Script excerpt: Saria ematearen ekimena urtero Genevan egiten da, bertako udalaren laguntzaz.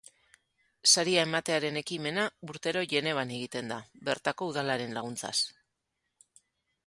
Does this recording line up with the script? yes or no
yes